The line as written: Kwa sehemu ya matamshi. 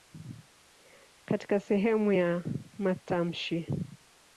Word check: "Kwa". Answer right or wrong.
wrong